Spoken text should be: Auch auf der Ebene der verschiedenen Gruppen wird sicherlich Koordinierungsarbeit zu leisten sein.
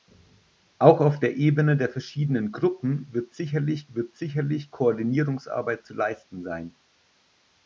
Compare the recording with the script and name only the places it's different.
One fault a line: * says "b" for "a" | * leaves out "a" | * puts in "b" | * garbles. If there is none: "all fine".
* puts in "wird sicherlich"